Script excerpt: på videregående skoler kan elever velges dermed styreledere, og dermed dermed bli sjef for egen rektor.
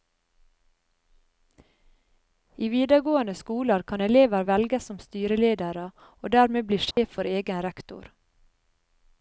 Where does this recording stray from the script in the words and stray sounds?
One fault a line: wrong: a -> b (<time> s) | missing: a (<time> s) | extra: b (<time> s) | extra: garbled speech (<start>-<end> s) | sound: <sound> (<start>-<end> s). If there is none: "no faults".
wrong: på -> I (2.5 s)
wrong: dermed -> som (4.9 s)
missing: dermed (6.7 s)
sound: dropout (6.9-7.0 s)